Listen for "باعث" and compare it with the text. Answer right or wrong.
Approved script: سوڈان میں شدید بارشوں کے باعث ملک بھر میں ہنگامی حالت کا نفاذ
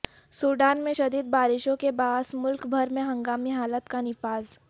right